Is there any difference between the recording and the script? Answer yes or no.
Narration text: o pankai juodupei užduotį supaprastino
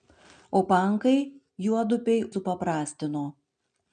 yes